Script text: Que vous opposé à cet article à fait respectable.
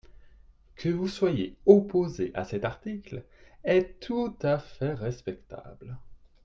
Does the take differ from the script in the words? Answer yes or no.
yes